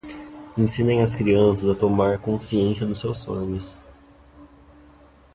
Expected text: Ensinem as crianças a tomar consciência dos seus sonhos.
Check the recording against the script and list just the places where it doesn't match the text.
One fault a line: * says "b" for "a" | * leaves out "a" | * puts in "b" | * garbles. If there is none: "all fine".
all fine